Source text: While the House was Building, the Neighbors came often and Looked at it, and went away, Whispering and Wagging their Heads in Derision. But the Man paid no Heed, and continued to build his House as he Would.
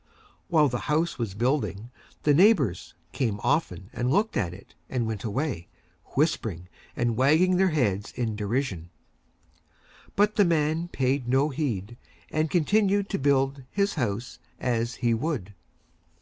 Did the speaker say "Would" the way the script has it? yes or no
yes